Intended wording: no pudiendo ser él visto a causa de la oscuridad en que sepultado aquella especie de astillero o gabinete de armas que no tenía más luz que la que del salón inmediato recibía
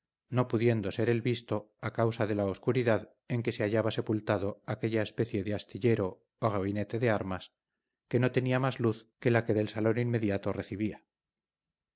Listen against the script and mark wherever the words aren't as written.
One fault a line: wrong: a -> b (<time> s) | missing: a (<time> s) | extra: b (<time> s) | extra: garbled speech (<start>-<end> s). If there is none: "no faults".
extra: se hallaba (3.5 s)